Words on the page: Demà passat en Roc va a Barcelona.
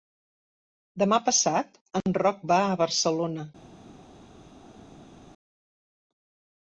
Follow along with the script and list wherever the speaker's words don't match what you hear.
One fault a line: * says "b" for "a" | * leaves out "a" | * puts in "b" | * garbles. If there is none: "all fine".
all fine